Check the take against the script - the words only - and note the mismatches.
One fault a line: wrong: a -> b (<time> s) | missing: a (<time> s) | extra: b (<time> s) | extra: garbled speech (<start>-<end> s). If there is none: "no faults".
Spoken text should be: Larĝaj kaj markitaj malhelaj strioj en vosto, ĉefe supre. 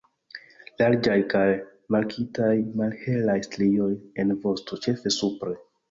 no faults